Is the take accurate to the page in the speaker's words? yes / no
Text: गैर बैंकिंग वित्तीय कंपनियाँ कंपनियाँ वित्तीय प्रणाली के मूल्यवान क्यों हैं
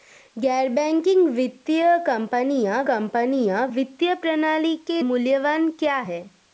yes